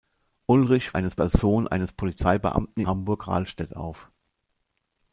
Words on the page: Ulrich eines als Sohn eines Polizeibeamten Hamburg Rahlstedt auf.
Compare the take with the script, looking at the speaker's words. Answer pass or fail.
pass